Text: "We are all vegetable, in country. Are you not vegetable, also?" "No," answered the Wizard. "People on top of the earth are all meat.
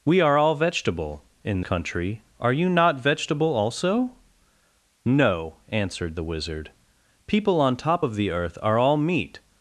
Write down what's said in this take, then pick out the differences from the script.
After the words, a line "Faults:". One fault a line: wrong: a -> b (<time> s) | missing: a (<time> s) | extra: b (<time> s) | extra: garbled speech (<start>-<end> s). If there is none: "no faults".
"We are all vegetable, in country. Are you not vegetable, also?" "No," answered the Wizard. "People on top of the earth are all meat.
Faults:
no faults